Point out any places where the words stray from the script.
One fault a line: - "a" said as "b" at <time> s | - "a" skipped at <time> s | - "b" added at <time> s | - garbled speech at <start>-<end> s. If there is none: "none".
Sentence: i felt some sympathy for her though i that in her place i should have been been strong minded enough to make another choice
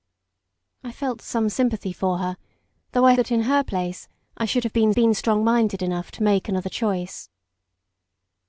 none